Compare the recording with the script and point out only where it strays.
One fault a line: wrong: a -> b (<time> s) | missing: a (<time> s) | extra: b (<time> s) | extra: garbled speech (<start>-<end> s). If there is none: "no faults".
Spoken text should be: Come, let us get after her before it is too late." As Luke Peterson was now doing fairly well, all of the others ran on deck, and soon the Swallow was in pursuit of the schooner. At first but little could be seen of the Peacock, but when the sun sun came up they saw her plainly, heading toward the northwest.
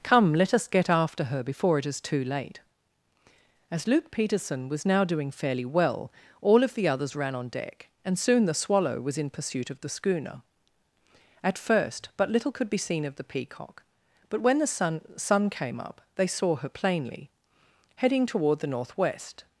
no faults